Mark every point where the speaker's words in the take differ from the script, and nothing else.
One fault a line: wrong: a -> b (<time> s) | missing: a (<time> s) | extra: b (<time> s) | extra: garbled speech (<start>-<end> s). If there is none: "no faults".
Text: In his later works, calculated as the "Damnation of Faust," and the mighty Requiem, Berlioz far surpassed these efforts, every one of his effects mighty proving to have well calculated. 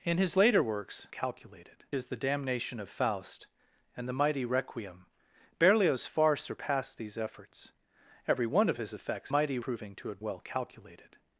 no faults